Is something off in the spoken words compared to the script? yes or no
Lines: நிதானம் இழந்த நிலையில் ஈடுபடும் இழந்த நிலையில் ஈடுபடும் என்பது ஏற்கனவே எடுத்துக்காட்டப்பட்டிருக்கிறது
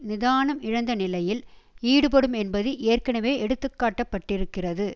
yes